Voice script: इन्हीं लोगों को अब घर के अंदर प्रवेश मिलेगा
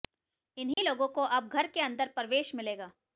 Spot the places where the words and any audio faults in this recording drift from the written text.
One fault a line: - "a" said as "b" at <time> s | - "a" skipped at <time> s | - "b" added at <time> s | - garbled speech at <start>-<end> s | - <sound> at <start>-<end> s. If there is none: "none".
- dropout at 0.7-0.8 s